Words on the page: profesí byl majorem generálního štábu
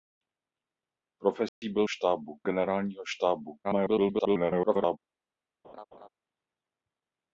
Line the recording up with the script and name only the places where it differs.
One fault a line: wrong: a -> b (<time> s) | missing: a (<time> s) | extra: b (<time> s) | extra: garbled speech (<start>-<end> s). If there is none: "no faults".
wrong: majorem -> štábu (1.9 s)
extra: garbled speech (3.6-5.0 s)